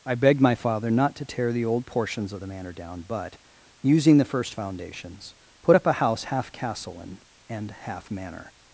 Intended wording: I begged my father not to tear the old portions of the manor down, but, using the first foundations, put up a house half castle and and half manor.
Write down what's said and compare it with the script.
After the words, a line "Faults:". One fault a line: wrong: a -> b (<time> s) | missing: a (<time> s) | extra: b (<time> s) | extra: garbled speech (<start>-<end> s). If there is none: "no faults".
I begged my father not to tear the old portions of the manor down, but, using the first foundations, put up a house half castle and and half manor.
Faults:
no faults